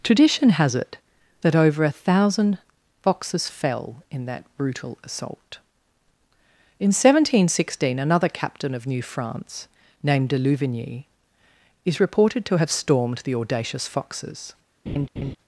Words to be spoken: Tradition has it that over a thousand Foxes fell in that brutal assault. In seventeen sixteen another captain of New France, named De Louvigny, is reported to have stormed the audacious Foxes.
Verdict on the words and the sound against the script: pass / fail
fail